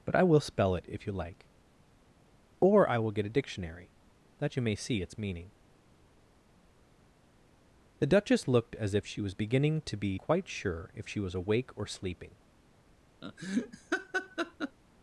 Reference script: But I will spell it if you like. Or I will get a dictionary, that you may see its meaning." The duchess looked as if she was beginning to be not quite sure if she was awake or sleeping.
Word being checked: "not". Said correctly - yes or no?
no